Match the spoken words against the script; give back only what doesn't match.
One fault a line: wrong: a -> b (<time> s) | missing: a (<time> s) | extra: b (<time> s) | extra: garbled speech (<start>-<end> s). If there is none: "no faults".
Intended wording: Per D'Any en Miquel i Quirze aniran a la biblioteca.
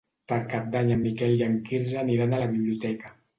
extra: Cap (0.5 s)
extra: en (1.5 s)